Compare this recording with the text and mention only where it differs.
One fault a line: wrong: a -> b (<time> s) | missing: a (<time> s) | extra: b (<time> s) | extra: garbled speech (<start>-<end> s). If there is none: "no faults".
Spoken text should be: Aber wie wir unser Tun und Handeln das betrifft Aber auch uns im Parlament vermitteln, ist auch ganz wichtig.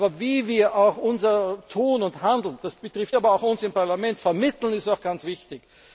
no faults